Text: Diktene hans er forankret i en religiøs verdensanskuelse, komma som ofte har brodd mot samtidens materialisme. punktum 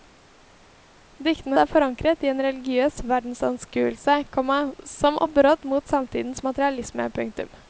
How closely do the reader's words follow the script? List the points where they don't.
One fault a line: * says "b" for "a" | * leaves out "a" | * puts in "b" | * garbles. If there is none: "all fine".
* leaves out "hans"
* leaves out "ofte"